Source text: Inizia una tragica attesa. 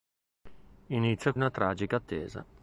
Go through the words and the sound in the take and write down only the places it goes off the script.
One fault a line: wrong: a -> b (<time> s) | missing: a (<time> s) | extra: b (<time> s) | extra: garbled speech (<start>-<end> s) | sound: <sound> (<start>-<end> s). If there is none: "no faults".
no faults